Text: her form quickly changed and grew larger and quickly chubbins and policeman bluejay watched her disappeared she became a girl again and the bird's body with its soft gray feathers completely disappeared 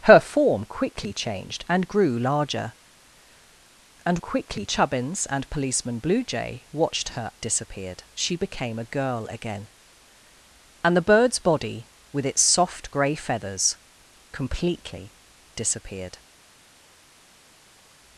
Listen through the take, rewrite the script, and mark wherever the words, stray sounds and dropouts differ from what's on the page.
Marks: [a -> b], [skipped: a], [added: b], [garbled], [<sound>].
her form quickly changed and grew larger and quickly chubbins and policeman bluejay watched her disappeared she became a girl again and the bird's body with its soft gray feathers completely disappeared